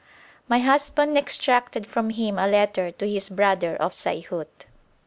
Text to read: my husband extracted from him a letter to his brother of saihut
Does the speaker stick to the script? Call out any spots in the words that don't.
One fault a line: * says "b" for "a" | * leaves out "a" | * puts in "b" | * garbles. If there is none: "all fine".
all fine